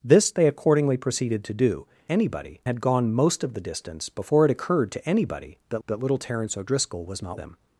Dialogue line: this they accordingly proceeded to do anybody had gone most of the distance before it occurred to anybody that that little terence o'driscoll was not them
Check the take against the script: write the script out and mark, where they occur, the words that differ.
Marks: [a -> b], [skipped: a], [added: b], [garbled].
this they accordingly proceeded to do anybody had gone most of the distance before it occurred to anybody that that little terence o'driscoll was not them